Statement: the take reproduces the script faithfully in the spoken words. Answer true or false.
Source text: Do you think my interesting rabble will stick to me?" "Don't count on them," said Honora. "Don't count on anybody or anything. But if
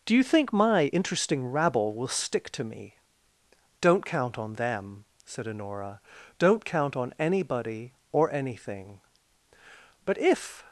true